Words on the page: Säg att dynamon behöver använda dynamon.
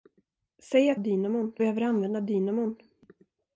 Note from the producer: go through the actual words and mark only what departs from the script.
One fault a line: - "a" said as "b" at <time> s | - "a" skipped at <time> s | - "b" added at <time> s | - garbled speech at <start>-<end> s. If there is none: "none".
none